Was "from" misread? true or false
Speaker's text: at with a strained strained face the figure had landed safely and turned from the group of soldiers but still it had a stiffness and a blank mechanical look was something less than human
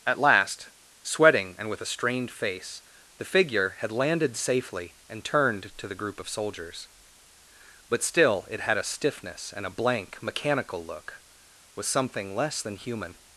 true